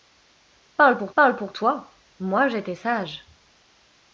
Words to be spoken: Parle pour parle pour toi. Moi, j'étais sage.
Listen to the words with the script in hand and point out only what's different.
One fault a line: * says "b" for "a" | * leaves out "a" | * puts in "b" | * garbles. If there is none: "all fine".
all fine